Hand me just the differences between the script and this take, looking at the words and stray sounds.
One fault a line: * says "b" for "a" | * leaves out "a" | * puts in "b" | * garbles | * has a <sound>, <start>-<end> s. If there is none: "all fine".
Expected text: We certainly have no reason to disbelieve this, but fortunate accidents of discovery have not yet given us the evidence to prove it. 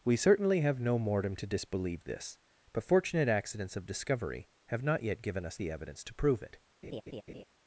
* says "mortem" for "reason"
* has a laugh, 6.8-7.4 s